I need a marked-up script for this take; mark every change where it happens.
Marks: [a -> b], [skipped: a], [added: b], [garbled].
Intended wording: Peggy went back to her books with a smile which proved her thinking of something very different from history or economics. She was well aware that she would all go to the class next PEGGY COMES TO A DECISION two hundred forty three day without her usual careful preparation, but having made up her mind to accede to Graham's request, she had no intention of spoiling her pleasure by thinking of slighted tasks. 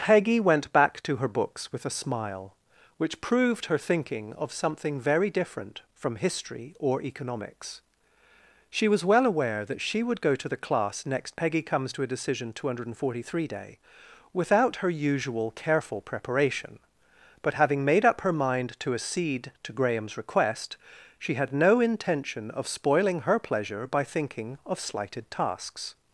Peggy went back to her books with a smile which proved her thinking of something very different from history or economics. She was well aware that she would [skipped: all] go to the class next PEGGY COMES TO A DECISION two hundred forty three day without her usual careful preparation, but having made up her mind to accede to Graham's request, she had no intention of spoiling her pleasure by thinking of slighted tasks.